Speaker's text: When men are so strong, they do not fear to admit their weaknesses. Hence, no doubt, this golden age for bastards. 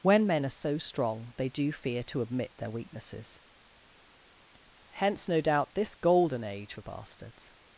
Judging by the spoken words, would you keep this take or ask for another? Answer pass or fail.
fail